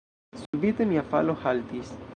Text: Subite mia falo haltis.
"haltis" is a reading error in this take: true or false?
false